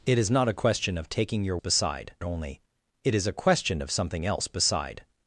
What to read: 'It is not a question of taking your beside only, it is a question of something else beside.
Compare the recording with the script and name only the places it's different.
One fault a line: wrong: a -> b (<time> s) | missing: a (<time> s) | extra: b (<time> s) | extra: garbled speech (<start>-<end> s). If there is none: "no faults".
no faults